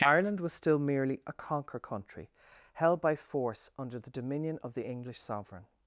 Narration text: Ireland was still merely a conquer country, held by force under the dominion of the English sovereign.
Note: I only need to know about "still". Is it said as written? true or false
true